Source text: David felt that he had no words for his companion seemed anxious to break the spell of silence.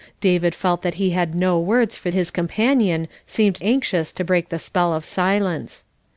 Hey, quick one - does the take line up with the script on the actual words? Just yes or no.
yes